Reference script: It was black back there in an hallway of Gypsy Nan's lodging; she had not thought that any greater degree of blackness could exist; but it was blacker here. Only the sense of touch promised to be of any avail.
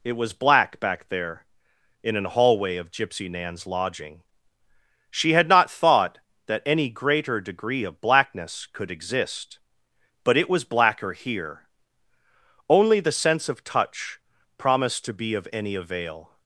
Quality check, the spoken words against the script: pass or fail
pass